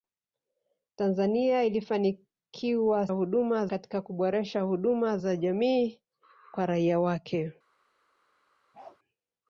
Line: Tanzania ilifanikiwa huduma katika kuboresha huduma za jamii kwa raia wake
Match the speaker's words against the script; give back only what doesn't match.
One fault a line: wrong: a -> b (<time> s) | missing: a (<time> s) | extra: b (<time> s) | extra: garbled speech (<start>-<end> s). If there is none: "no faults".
no faults